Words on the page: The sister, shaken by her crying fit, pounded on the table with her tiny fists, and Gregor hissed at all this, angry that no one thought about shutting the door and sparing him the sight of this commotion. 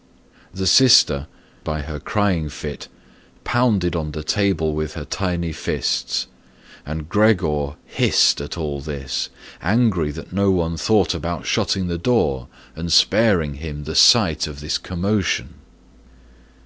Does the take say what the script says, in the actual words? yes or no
no